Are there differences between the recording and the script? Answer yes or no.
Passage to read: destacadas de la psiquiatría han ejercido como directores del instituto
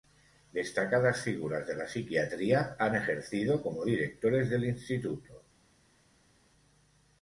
yes